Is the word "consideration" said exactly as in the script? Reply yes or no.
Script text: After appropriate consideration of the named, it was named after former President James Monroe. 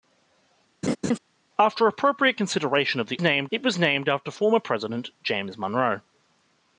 yes